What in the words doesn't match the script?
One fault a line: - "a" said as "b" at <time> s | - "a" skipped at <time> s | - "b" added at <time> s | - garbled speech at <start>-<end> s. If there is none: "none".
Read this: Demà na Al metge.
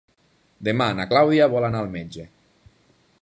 - "Clàudia vol anar" added at 1.1 s